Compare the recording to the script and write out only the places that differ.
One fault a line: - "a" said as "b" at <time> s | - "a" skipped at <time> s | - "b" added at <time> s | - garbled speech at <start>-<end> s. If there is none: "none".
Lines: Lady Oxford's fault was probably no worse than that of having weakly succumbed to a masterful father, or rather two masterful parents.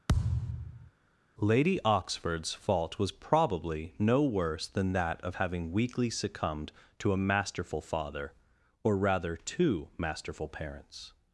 none